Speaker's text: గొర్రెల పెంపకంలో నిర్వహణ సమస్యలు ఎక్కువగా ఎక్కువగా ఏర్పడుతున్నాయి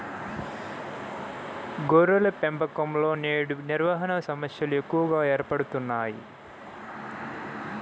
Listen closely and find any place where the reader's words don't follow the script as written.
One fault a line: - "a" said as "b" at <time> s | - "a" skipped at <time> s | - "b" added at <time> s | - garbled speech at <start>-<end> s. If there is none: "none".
- "నేడు" added at 3.2 s
- "ఎక్కువగా" skipped at 5.2 s